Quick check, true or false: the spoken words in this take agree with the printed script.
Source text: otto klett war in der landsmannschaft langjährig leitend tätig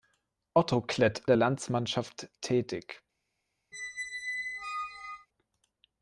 false